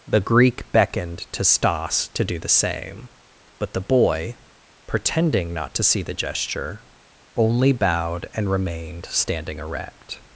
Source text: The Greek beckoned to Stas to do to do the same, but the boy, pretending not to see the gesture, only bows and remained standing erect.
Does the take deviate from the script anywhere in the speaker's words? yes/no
yes